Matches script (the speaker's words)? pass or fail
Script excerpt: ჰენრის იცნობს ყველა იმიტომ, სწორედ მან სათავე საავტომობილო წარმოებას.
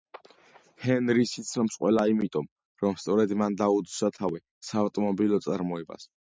fail